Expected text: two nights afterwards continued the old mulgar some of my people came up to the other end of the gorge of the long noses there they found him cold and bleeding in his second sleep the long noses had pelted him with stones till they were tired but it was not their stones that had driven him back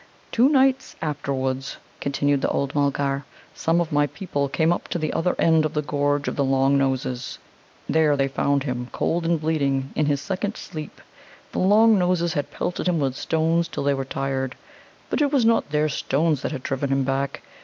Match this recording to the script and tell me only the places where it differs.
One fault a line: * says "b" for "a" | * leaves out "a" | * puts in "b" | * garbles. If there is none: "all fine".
all fine